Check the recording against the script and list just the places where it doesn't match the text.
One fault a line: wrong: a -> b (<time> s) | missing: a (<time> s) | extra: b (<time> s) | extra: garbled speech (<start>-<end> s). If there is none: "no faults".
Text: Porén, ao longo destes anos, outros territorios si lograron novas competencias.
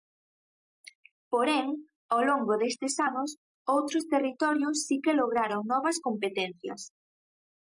extra: que (5.0 s)